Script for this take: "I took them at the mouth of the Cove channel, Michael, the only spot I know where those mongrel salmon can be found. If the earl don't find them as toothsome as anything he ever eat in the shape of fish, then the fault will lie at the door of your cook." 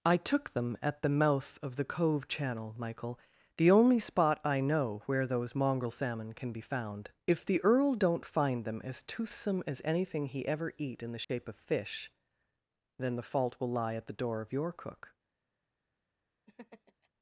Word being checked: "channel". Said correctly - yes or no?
yes